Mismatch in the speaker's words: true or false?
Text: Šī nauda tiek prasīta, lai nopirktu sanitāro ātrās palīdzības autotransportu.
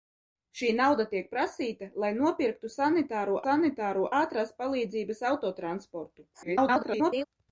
true